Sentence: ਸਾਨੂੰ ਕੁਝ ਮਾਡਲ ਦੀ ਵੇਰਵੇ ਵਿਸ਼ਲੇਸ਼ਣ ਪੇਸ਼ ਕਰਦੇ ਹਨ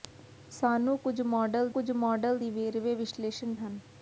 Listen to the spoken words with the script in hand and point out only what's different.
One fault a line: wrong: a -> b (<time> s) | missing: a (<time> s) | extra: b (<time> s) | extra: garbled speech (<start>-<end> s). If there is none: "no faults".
extra: ਕੁਝ ਮਾਡਲ (1.7 s)
missing: ਪੇਸ਼ ਕਰਦੇ (3.5 s)